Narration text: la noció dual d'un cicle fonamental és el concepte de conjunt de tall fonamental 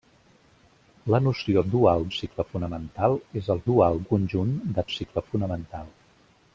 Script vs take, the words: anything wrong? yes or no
yes